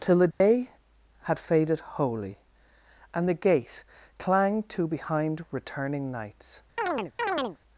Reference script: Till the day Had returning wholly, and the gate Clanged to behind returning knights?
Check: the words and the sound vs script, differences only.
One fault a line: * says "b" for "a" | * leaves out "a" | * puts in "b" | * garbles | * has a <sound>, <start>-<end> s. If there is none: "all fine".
* has a dropout, 0.3-0.4 s
* says "faded" for "returning"
* has a chirp, 6.8-7.6 s